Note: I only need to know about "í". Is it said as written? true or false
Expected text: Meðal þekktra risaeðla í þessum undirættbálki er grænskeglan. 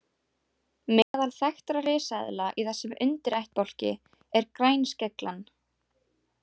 true